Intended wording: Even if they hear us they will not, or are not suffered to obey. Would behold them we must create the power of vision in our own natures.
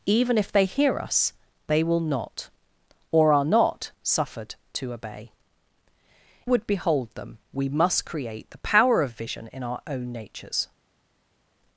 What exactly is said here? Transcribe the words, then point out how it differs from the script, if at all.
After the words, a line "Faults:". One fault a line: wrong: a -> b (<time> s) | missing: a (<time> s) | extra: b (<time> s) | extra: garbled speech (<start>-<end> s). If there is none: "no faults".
Even if they hear us they will not, or are not suffered to obey. Would behold them we must create the power of vision in our own natures.
Faults:
no faults